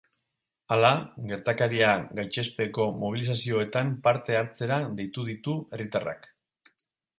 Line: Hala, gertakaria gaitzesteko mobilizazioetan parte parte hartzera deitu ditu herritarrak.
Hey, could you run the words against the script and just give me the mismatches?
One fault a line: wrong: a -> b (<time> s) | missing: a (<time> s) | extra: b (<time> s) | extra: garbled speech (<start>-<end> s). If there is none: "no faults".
missing: parte (4.4 s)